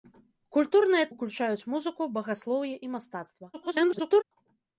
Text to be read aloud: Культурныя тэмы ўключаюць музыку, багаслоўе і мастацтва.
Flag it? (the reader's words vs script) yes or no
yes